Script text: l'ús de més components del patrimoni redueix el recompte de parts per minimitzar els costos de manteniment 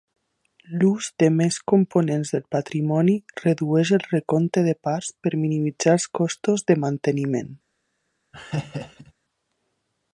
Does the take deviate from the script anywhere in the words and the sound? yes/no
yes